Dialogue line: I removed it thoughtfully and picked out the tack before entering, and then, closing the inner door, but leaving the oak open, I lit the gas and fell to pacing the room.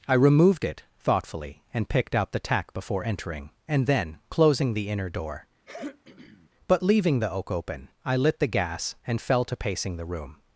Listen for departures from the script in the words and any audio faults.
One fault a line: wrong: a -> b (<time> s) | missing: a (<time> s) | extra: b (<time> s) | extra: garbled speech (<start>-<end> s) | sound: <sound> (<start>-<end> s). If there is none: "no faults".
sound: throat clearing (5.6-6.5 s)